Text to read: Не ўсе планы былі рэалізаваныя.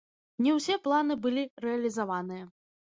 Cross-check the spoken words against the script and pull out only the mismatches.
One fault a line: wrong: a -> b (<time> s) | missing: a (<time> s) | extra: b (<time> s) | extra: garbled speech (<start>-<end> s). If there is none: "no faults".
no faults